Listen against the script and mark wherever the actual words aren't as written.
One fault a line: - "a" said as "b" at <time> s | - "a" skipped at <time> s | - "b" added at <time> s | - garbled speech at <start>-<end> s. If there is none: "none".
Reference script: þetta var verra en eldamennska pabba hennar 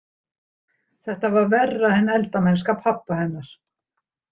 none